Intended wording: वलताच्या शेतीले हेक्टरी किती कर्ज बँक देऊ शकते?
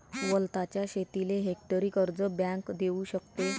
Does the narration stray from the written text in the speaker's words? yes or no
yes